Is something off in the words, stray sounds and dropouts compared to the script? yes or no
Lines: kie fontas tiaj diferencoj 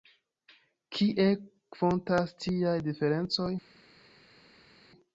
no